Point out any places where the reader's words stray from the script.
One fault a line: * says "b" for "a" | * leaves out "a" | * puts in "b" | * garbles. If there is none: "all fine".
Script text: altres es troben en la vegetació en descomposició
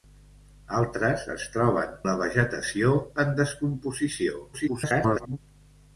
* leaves out "en"
* garbles